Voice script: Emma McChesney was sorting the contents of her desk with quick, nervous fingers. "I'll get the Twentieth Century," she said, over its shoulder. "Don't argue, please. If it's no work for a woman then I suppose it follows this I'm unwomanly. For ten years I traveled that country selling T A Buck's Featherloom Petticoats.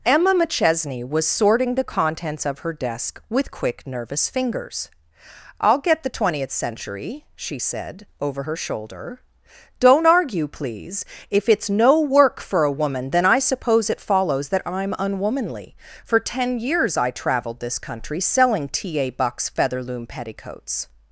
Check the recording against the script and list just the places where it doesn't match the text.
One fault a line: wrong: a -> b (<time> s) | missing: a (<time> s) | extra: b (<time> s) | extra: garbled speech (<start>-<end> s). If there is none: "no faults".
wrong: its -> her (8.4 s)
wrong: this -> that (14.5 s)
wrong: that -> this (17.6 s)